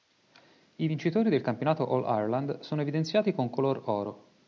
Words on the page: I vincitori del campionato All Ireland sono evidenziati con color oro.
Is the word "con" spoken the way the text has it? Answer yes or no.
yes